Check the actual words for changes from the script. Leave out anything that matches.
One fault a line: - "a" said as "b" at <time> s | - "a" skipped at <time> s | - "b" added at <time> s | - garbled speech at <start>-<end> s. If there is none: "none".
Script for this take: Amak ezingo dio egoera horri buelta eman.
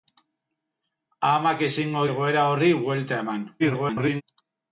- "dio" skipped at 2.0 s
- garbled speech at 3.6-4.2 s